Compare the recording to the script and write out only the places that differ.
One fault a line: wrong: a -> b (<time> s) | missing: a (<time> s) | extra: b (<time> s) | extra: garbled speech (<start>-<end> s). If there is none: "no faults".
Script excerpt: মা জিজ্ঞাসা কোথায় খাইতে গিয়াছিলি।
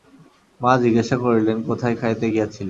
extra: করিলেন (1.2 s)